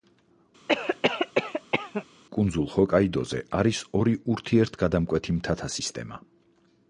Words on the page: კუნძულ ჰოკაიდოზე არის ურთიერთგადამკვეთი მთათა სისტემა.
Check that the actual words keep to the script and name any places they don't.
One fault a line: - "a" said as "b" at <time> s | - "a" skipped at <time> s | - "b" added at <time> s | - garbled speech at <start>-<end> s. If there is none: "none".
- "ორი" added at 4.0 s